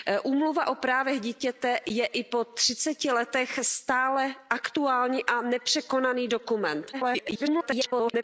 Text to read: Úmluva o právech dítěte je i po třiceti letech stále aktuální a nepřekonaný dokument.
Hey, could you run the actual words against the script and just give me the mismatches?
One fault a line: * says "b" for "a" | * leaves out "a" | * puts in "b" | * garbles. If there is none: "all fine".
* garbles